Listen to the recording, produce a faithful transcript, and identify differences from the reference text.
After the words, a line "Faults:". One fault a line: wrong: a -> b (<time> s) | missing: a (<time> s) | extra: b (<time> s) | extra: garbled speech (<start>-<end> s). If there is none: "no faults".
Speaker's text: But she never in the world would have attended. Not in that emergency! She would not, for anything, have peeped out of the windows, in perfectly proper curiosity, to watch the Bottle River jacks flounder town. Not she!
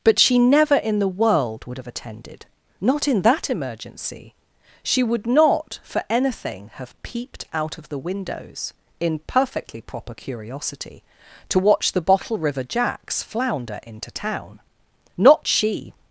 But she never in the world would have attended. Not in that emergency! She would not, for anything, have peeped out of the windows, in perfectly proper curiosity, to watch the Bottle River jacks flounder into town. Not she!
Faults:
extra: into (13.8 s)